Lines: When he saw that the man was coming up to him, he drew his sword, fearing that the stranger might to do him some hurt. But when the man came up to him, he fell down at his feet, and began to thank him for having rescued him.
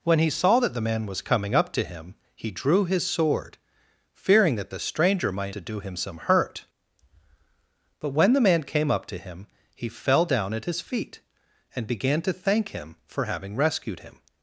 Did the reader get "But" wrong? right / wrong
right